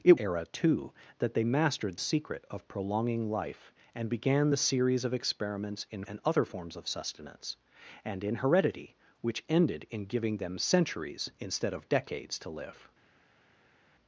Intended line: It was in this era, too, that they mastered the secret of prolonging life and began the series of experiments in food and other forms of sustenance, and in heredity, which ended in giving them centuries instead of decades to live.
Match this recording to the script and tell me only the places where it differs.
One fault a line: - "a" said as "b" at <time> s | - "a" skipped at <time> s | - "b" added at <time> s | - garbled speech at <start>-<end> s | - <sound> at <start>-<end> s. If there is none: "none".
- "was in this" skipped at 0.2 s
- "the" skipped at 2.0 s
- "food" skipped at 6.0 s